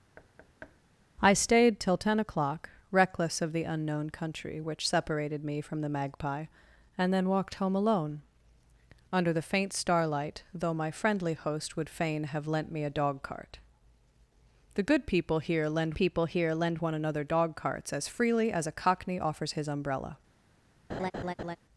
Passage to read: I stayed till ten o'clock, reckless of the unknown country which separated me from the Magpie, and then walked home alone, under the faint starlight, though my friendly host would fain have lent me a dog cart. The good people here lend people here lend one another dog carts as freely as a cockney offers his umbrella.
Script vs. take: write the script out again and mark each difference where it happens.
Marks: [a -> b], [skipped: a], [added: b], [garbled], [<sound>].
[thud] I stayed till ten o'clock, reckless of the unknown country which separated me from the Magpie, and then walked home alone, under the faint starlight, though my friendly host would fain have lent me a dog cart. The good people here lend people here lend one another dog carts as freely as a cockney offers his umbrella. [laugh]